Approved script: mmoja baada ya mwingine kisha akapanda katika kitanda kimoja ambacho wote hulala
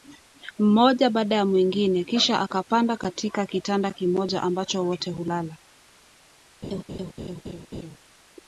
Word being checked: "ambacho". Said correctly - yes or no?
yes